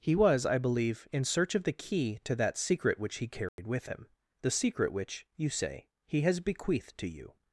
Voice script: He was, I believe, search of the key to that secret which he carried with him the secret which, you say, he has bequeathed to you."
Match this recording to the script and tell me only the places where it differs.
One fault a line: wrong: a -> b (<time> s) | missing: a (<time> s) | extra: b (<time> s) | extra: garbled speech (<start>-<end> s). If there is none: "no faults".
extra: in (1.1 s)